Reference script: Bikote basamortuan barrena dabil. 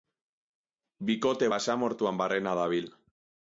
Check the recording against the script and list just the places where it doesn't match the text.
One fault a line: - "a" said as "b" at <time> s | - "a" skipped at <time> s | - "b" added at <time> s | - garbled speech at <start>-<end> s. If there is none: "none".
none